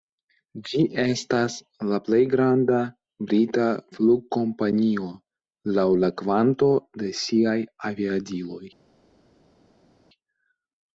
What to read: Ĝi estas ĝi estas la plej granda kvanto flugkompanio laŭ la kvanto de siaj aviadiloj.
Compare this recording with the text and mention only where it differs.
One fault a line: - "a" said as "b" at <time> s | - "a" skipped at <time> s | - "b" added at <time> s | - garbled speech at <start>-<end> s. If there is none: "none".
- "ĝi estas" skipped at 1.6 s
- "kvanto" said as "brita" at 3.3 s